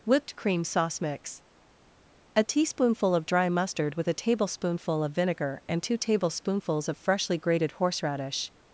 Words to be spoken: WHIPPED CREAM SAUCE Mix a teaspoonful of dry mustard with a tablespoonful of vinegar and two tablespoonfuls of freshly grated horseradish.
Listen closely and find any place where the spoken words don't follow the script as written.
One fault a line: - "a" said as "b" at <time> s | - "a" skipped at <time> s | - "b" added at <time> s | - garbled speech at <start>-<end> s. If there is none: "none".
none